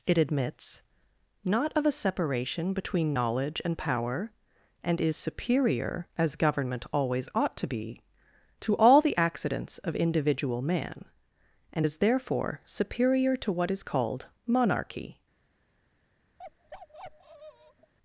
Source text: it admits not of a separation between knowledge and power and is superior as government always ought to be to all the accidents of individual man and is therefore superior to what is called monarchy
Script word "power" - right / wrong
right